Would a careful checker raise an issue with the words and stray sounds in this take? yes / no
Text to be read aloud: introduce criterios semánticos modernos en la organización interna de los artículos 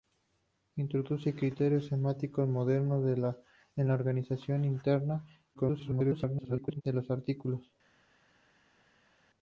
yes